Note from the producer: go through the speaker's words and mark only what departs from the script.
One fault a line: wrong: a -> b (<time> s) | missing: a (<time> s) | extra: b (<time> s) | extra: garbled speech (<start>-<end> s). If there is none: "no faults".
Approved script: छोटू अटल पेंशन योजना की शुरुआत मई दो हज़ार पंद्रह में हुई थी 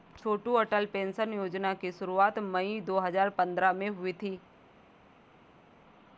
no faults